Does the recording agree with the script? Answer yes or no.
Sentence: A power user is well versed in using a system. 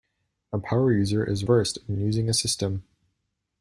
no